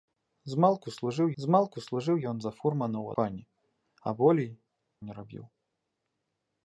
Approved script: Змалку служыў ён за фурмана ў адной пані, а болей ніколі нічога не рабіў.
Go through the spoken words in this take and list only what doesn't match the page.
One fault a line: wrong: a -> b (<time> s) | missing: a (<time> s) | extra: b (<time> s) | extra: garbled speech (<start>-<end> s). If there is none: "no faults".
extra: змалку служыў (1.4 s)
missing: адной (3.1 s)
missing: ніколі нічога (4.5 s)